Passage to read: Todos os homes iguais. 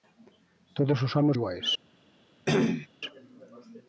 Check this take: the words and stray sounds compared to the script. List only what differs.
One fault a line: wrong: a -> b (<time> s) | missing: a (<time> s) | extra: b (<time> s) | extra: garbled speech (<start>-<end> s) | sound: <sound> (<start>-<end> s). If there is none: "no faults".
sound: cough (2.5-2.9 s)